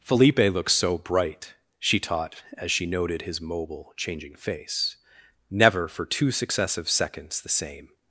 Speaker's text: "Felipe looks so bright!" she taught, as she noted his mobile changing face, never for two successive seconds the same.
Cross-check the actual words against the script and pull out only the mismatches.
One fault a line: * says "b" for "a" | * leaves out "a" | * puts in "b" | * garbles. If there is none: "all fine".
all fine